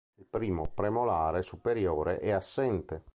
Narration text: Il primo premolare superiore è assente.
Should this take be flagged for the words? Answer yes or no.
no